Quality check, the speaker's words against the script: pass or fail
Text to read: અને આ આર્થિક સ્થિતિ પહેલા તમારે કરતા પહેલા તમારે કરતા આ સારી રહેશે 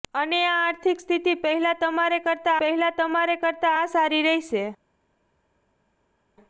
pass